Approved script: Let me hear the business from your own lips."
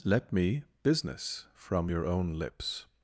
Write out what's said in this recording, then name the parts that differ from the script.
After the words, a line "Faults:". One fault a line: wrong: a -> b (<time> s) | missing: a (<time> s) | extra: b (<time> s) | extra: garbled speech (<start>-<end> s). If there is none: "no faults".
Let me business from your own lips."
Faults:
missing: hear the (0.6 s)